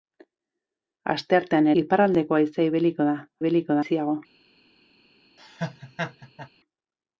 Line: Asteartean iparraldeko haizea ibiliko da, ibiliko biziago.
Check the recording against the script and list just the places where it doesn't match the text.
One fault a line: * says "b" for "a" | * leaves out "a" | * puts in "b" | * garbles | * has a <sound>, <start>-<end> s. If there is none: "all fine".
* has a laugh, 5.4-6.5 s